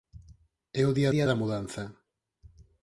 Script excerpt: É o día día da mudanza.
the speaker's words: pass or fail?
pass